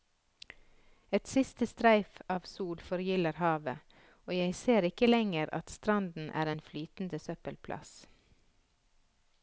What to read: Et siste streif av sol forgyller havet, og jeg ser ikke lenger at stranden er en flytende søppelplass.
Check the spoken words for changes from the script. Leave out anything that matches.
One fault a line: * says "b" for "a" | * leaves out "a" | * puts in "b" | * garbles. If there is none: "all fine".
all fine